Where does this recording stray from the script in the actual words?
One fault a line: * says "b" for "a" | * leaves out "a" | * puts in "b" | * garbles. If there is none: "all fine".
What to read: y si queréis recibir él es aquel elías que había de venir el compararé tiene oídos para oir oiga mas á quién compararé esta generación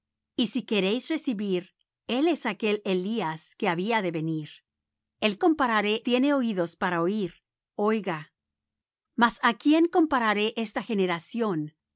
all fine